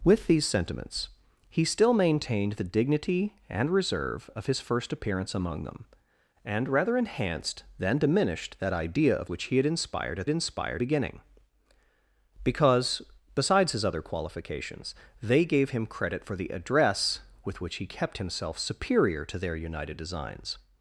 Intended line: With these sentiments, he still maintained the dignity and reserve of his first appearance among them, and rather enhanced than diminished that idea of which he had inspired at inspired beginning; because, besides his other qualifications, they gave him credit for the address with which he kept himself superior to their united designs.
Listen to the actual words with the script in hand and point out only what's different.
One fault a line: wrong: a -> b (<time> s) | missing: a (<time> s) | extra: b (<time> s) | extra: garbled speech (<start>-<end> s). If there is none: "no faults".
no faults